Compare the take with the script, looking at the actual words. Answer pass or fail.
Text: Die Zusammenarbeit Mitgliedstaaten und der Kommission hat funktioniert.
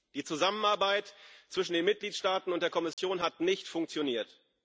fail